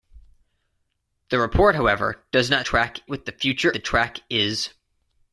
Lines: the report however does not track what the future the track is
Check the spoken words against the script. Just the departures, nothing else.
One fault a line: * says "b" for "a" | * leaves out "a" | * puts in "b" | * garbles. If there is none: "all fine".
all fine